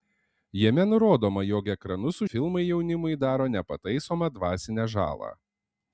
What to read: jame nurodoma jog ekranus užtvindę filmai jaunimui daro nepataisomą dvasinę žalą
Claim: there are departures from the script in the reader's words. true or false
true